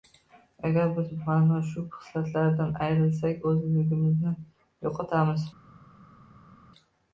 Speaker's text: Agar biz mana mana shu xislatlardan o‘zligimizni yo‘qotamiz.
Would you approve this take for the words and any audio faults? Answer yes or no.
no